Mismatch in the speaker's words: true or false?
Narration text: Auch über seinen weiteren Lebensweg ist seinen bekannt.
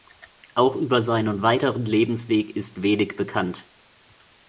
true